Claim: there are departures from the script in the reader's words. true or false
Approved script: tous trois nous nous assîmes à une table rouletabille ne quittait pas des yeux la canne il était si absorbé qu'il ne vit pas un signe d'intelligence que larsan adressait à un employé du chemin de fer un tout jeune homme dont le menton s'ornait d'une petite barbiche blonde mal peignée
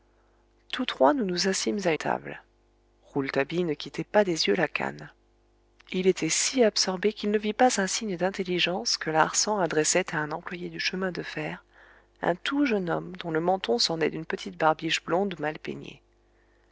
true